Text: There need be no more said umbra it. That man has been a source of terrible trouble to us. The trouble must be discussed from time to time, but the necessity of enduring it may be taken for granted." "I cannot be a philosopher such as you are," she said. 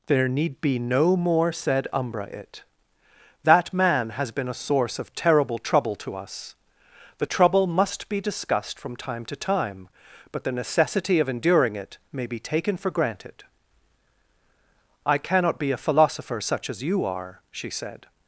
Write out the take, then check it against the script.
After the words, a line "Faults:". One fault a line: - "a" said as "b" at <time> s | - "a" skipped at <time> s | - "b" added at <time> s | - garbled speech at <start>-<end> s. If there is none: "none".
There need be no more said umbra it. That man has been a source of terrible trouble to us. The trouble must be discussed from time to time, but the necessity of enduring it may be taken for granted." "I cannot be a philosopher such as you are," she said.
Faults:
none